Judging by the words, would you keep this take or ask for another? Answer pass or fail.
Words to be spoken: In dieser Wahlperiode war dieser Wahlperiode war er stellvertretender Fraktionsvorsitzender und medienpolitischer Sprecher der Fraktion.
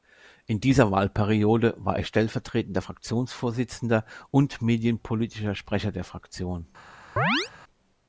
fail